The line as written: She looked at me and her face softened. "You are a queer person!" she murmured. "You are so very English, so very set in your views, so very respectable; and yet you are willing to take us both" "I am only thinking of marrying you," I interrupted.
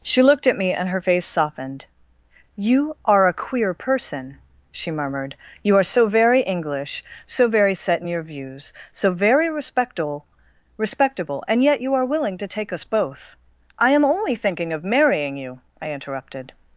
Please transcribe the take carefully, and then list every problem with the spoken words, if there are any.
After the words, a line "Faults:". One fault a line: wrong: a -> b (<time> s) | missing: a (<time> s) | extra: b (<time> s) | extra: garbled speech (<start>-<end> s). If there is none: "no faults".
She looked at me and her face softened. "You are a queer person!" she murmured. "You are so very English, so very set in your views, so very respectable respectable; and yet you are willing to take us both" "I am only thinking of marrying you," I interrupted.
Faults:
extra: respectable (10.8 s)